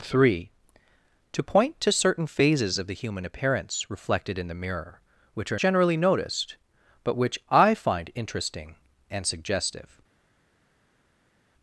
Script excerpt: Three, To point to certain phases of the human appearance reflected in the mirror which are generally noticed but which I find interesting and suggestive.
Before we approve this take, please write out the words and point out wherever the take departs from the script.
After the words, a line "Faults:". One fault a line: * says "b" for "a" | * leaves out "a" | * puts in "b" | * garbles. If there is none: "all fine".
Three, To point to certain phases of the human appearance reflected in the mirror which are generally noticed but which I find interesting and suggestive.
Faults:
all fine